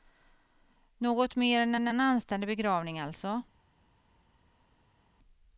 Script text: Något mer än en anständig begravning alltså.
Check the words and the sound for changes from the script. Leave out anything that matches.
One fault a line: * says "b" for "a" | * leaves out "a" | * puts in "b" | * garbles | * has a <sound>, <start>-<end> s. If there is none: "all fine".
* puts in "än"